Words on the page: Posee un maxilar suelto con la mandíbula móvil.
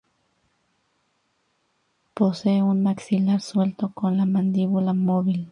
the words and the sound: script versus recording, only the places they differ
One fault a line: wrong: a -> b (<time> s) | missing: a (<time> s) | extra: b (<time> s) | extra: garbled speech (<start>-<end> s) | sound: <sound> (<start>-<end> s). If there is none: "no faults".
no faults